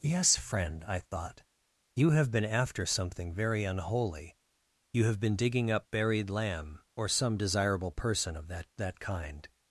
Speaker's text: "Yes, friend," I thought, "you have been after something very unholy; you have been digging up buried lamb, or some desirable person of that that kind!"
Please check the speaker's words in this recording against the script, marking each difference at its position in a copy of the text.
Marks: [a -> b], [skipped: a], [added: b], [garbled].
"Yes, friend," I thought, "you have been after something very unholy; you have been digging up buried lamb, or some desirable person of that that kind!"